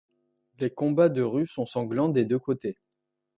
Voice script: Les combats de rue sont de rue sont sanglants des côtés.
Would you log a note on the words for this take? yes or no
yes